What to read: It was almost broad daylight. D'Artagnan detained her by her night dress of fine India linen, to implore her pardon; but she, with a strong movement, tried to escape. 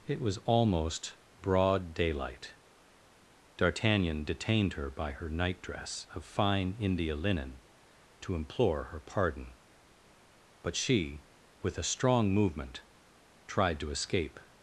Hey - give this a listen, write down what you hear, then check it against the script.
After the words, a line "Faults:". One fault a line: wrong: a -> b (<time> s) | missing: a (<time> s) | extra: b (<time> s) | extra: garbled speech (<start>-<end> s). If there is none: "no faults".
It was almost broad daylight. D'Artagnan detained her by her night dress of fine India linen, to implore her pardon; but she, with a strong movement, tried to escape.
Faults:
no faults